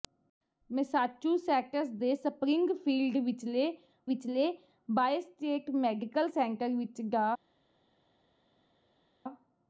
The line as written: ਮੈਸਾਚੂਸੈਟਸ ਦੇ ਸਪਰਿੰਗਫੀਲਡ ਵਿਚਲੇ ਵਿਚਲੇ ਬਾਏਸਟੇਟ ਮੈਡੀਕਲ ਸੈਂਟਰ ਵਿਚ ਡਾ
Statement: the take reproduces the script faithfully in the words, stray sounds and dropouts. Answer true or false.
true